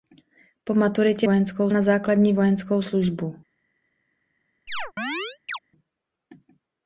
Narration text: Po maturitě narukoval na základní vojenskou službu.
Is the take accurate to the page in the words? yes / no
no